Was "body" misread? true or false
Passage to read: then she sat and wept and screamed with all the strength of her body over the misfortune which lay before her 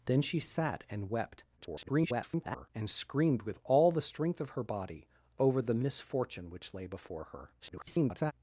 false